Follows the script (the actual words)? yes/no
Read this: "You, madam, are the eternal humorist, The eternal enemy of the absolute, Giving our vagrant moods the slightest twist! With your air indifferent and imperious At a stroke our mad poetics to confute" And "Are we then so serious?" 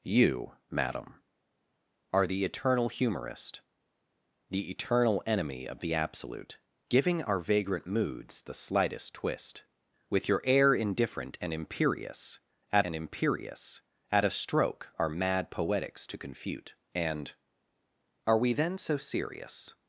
no